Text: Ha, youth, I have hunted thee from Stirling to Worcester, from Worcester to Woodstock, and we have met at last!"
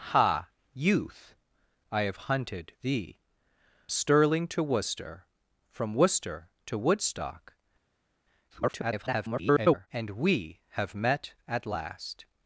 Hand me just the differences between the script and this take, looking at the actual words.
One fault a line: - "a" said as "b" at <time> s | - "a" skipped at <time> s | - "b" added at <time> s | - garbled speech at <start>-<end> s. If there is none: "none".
- "from" skipped at 3.2 s
- garbled speech at 8.5-9.9 s